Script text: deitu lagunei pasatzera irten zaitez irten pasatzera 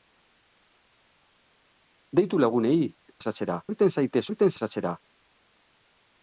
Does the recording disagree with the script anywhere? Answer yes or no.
no